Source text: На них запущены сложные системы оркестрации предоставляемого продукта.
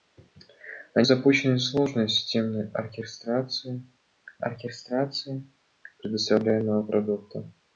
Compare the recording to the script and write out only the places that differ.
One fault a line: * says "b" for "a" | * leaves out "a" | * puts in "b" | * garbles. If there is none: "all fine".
* leaves out "них"
* puts in "оркестрации"